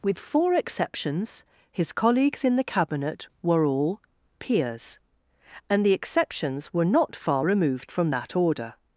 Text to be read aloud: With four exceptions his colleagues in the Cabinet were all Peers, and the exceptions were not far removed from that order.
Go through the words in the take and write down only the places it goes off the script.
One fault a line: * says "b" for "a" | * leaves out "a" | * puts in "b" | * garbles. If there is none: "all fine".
all fine